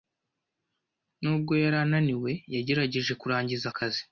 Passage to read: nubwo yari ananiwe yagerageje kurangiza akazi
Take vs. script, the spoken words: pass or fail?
pass